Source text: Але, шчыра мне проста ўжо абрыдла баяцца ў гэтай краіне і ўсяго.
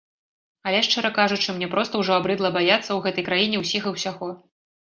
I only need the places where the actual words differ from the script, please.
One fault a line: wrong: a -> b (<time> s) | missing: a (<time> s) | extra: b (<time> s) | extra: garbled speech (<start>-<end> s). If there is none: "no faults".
extra: кажучы (1.2 s)
extra: ўсіх (3.7 s)